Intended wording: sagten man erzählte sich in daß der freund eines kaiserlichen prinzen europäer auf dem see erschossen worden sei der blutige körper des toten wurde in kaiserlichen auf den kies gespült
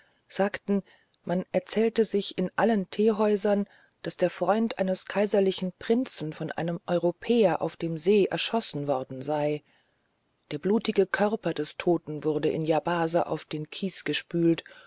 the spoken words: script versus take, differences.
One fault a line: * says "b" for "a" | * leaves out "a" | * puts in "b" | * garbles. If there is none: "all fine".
* puts in "allen teehäusern"
* puts in "von einem"
* says "yabase" for "kaiserlichen"